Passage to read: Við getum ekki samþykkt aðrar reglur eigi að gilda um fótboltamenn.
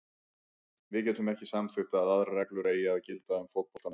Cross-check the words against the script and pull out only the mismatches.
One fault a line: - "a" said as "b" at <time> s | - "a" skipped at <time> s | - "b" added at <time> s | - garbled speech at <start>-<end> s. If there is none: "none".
- "að" added at 2.0 s